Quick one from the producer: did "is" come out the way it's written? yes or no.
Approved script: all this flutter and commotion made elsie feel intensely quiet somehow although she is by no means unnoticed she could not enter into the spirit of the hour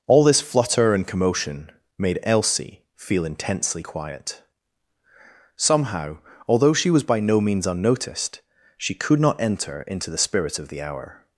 no